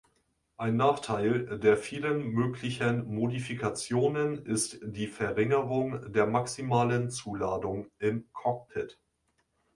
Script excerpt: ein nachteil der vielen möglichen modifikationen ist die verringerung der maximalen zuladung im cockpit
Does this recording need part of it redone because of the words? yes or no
no